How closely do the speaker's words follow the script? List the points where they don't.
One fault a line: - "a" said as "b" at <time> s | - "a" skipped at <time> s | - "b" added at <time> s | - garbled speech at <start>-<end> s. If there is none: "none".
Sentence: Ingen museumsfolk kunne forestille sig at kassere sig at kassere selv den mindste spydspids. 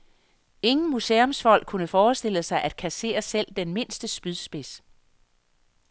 - "sig at kassere" skipped at 3.2 s